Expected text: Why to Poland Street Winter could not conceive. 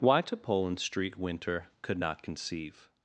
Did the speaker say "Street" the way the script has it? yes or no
yes